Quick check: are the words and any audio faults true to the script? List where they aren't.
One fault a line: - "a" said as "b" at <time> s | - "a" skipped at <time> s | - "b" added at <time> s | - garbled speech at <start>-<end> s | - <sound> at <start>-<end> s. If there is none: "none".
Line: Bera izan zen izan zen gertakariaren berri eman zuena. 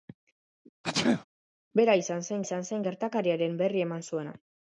- sneeze at 0.8-1.2 s